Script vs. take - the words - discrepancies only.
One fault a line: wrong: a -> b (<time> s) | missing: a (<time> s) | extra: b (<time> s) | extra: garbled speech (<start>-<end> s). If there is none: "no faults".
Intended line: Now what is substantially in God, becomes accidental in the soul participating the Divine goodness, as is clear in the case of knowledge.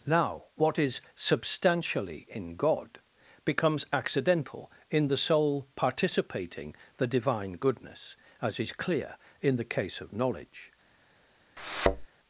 no faults